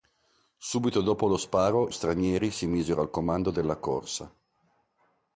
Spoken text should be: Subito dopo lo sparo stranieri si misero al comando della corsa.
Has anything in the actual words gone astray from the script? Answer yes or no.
no